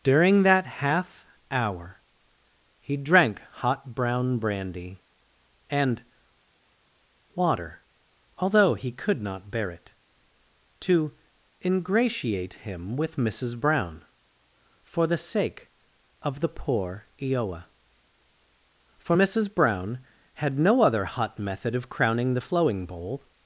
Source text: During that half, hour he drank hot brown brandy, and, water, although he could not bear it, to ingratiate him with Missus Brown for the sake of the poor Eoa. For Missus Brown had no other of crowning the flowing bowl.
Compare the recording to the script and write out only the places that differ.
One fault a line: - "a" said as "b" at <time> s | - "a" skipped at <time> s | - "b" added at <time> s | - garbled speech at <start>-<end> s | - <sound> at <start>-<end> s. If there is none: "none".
- "hot method" added at 21.1 s